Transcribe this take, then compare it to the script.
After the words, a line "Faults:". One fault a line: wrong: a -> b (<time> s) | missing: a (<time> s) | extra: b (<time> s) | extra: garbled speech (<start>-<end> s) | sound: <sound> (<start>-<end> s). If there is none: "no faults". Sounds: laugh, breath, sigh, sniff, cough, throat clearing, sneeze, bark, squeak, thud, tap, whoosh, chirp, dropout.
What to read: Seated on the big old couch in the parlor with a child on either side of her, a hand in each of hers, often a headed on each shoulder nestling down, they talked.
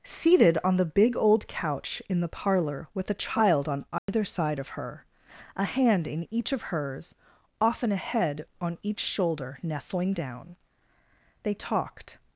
Seated on the big old couch in the parlor with a child on either side of her, a hand in each of hers, often a head on each shoulder nestling down, they talked.
Faults:
sound: dropout (4.0-4.1 s)
wrong: headed -> head (8.0 s)